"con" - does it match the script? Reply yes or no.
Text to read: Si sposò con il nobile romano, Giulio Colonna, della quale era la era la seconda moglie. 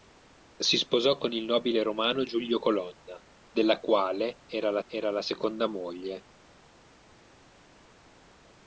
yes